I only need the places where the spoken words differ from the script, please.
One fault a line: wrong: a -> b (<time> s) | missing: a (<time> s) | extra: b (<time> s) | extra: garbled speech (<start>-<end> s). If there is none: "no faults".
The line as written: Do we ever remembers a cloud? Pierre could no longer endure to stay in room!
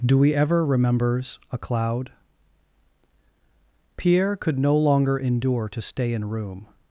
no faults